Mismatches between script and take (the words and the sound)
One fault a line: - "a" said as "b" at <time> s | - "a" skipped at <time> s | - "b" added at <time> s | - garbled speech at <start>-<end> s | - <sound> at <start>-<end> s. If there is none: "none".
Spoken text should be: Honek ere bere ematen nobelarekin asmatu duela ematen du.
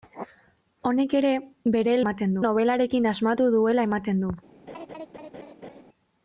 - laugh at 4.7-5.8 s